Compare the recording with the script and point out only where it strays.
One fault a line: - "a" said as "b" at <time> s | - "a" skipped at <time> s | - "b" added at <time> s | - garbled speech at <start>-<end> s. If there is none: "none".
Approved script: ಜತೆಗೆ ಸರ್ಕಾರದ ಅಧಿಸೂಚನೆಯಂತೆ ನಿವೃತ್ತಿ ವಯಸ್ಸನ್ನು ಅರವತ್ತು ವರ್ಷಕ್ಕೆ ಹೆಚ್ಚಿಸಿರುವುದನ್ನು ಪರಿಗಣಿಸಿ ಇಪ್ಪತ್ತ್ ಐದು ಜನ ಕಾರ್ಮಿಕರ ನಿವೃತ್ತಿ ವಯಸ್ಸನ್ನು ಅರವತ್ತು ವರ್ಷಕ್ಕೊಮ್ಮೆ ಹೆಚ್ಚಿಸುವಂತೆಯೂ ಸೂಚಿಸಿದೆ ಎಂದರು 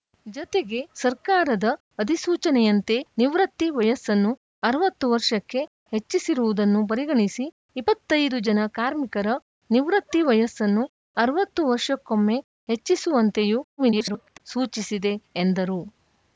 - garbled speech at 13.8-14.4 s